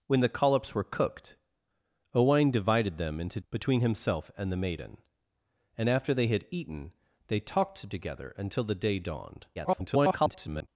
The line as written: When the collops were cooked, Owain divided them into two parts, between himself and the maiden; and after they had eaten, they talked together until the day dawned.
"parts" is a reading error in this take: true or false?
true